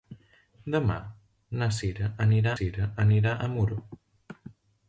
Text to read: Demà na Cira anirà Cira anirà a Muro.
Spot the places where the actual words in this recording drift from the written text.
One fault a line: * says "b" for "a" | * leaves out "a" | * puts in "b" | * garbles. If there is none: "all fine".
all fine